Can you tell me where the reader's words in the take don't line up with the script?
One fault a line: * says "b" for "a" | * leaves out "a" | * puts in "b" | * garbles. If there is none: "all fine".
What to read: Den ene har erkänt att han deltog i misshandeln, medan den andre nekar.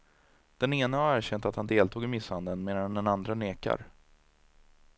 all fine